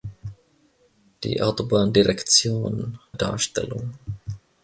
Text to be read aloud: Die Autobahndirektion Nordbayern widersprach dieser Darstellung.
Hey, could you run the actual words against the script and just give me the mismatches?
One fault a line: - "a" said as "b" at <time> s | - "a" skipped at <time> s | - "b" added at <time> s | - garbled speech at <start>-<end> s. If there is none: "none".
- "Nordbayern widersprach dieser" skipped at 3.0 s